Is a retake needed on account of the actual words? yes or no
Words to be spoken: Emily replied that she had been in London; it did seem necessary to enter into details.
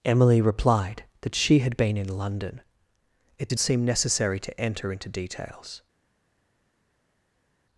no